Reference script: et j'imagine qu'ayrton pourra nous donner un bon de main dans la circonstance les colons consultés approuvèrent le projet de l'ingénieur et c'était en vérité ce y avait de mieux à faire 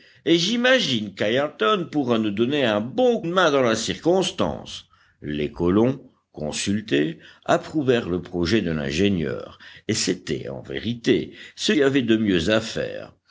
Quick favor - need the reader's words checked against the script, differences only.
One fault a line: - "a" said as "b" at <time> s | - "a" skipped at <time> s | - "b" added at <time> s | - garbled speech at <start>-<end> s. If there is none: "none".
none